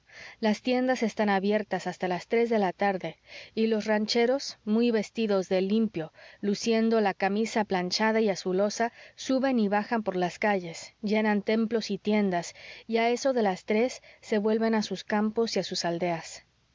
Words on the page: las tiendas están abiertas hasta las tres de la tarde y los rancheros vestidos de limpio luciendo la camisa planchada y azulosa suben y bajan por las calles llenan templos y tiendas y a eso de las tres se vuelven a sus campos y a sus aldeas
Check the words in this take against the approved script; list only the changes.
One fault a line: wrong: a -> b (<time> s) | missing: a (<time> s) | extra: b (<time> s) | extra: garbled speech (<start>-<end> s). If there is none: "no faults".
extra: muy (4.7 s)